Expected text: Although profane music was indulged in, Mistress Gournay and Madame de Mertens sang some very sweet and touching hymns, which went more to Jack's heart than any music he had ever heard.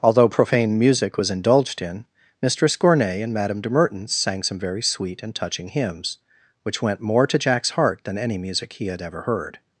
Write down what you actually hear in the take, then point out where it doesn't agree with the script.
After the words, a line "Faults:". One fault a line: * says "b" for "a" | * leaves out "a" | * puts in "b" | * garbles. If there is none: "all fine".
Although profane music was indulged in, Mistress Gournay and Madame de Mertens sang some very sweet and touching hymns, which went more to Jack's heart than any music he had ever heard.
Faults:
all fine